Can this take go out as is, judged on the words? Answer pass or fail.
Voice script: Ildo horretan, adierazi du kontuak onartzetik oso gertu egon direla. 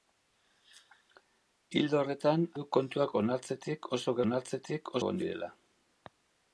fail